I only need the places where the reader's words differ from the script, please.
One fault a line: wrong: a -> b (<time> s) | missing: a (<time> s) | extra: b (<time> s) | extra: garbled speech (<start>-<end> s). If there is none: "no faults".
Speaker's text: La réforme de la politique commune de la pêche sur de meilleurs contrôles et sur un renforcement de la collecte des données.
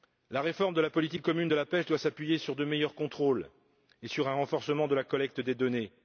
extra: doit s'appuyer (1.8 s)